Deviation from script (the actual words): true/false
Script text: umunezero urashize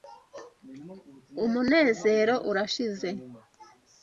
false